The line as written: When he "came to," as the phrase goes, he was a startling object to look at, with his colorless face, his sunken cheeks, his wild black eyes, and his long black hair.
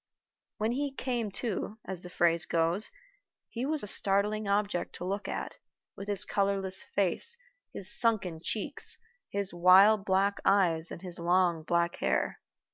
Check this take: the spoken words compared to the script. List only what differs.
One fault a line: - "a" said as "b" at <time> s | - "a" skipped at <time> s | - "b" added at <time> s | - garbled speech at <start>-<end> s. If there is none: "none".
none